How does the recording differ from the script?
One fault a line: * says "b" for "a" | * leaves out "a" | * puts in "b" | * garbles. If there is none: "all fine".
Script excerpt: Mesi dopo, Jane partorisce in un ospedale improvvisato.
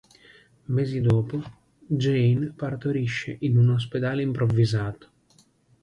all fine